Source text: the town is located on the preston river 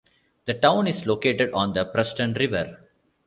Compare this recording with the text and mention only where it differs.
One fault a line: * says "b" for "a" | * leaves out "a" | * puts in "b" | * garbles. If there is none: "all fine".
all fine